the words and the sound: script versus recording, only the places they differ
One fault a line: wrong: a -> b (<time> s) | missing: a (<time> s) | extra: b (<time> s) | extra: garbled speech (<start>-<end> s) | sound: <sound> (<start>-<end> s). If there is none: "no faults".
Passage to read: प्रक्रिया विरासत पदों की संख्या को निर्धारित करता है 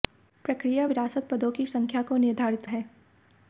missing: करता (2.7 s)